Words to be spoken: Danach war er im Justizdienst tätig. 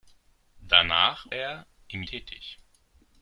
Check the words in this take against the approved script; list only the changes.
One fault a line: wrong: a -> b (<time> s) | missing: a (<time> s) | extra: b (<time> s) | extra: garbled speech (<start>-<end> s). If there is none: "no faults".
missing: war (1.3 s)
missing: Justizdienst (2.0 s)